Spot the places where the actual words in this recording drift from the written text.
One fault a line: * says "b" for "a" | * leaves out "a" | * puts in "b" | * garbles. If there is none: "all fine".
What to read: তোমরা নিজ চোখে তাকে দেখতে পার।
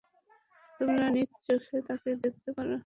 all fine